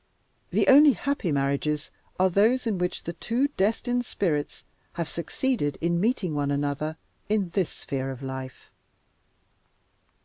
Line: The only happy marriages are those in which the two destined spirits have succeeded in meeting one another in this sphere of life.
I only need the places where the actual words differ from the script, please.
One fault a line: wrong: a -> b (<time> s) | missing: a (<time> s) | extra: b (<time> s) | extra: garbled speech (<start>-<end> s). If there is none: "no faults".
no faults